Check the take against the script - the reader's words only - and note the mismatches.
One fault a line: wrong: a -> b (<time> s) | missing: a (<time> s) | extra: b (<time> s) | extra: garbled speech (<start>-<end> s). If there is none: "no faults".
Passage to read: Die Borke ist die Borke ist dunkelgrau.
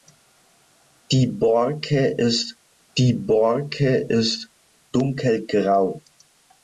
no faults